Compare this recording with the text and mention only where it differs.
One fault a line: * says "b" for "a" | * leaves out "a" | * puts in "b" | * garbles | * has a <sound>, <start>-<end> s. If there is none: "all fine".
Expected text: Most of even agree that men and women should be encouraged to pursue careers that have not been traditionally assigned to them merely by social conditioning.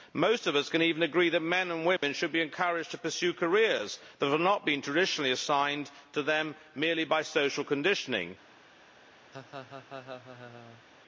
* puts in "us can"
* has a dropout, 2.0-2.0 s
* has a laugh, 9.3-10.8 s